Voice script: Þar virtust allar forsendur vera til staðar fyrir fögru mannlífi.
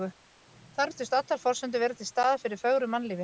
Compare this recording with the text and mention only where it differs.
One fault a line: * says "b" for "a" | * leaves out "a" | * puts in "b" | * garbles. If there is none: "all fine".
all fine